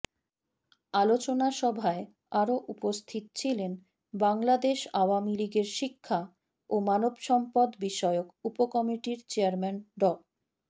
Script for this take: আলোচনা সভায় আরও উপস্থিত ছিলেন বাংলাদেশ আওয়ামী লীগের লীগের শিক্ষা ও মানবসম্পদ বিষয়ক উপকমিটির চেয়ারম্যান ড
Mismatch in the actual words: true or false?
true